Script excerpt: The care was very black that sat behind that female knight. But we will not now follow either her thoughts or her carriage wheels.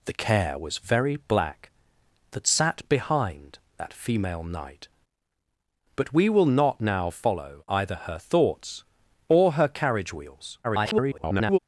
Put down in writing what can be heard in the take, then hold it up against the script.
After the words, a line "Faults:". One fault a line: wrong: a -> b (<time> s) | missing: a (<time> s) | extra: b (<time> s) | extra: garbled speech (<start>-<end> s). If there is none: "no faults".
The care was very black that sat behind that female knight. But we will not now follow either her thoughts or her carriage wheels. [garbled]
Faults:
extra: garbled speech (10.6-11.6 s)